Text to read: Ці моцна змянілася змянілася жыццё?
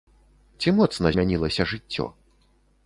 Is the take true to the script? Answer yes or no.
no